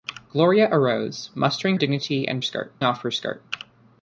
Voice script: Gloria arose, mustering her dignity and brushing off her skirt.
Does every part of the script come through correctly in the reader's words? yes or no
no